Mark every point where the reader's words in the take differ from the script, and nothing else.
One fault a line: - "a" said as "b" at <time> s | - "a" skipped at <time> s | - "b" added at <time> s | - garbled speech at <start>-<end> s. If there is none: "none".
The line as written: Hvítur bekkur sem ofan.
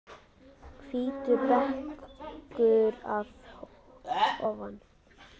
- "sem" said as "að" at 3.2 s